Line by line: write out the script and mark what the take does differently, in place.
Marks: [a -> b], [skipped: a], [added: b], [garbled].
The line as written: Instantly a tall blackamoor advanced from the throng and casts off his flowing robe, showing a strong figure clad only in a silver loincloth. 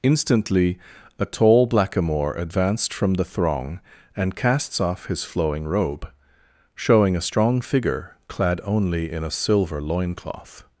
Instantly a tall blackamoor advanced from the throng and casts off his flowing robe, showing a strong figure clad only in a silver loincloth.